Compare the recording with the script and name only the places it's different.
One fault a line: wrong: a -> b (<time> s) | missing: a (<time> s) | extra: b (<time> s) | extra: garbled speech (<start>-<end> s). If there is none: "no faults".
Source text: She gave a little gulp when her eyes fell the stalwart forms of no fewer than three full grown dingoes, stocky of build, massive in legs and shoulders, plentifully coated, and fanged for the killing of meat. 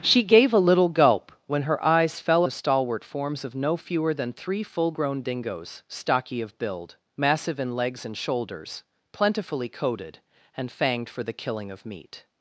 no faults